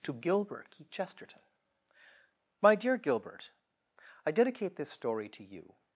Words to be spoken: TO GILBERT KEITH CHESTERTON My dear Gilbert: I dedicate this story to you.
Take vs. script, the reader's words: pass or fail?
pass